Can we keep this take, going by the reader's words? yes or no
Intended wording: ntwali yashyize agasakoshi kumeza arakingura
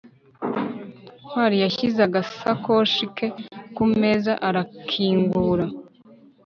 no